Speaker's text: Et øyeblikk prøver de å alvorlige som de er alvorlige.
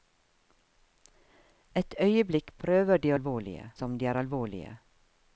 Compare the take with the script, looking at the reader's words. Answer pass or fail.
pass